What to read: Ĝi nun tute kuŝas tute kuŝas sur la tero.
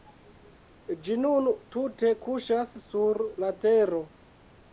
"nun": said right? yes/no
yes